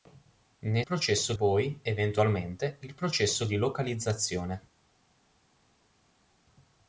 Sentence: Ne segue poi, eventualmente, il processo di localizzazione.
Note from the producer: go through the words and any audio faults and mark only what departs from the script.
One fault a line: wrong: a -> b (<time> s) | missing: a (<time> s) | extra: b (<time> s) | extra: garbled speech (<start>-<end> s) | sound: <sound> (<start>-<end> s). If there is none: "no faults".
wrong: segue -> processo (0.8 s)